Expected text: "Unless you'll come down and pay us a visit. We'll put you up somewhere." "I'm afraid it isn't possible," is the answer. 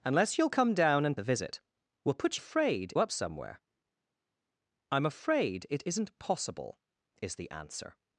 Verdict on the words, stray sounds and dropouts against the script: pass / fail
fail